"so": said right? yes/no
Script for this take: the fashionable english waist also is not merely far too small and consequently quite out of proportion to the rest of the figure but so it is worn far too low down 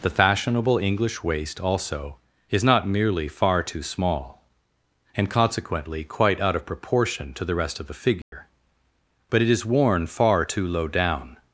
no